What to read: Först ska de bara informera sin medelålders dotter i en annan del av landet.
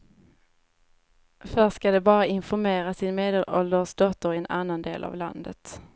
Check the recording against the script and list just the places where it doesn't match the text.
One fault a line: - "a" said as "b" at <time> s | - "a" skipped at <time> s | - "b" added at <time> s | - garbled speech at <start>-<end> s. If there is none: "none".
none